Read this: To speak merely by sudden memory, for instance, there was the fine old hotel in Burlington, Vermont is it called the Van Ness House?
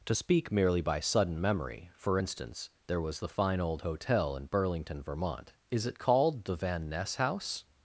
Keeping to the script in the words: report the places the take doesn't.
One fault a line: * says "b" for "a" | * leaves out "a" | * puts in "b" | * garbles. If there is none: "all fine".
all fine